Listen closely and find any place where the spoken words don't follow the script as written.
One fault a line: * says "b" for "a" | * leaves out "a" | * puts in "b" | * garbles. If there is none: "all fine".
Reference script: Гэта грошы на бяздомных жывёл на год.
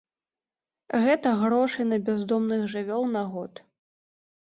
all fine